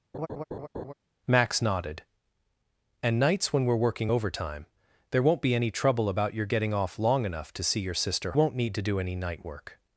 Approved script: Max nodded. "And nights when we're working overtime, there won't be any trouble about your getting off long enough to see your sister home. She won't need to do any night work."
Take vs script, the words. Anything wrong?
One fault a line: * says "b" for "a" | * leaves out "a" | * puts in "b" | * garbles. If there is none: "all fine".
* leaves out "home She"